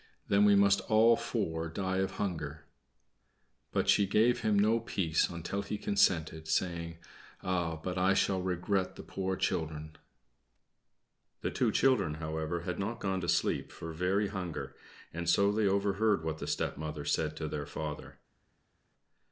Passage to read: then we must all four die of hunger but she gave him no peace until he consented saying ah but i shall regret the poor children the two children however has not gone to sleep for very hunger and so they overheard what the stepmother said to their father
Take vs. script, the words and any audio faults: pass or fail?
fail